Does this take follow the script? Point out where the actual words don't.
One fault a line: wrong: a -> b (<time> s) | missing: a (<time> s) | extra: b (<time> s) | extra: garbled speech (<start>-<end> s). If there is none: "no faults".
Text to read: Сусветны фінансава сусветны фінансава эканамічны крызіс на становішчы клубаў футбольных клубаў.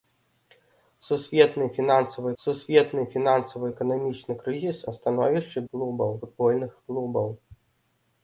no faults